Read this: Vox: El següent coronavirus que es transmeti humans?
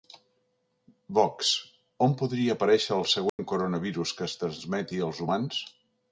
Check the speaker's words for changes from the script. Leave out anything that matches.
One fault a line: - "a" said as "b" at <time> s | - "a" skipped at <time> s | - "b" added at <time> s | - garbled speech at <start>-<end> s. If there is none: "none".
- "On podria aparèixer" added at 2.0 s
- "als" added at 5.1 s